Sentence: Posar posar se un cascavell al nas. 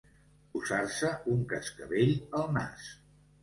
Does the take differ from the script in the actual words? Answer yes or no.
yes